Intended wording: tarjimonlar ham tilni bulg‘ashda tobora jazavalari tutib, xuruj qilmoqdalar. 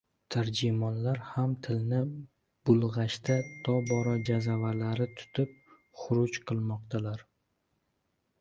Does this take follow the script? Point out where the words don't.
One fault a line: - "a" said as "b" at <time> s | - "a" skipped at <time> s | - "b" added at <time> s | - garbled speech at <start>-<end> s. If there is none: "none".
none